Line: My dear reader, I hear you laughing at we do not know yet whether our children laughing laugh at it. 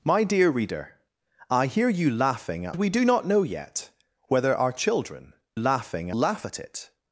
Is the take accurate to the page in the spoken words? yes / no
yes